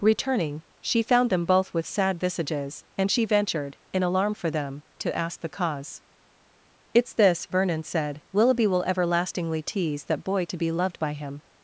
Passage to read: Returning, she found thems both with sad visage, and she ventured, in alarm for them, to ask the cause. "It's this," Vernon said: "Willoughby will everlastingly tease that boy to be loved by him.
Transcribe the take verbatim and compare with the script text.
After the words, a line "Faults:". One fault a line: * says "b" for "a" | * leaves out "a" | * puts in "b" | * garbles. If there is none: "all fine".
Returning, she found them both with sad visages, and she ventured, in alarm for them, to ask the cause. "It's this," Vernon said: "Willoughby will everlastingly tease that boy to be loved by him.
Faults:
* says "them" for "thems"
* says "visages" for "visage"